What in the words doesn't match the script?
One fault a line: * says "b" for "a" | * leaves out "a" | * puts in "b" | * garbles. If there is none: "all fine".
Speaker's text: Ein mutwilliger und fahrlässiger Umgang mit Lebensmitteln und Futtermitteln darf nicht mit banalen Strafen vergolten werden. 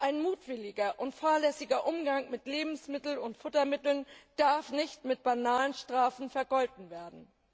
all fine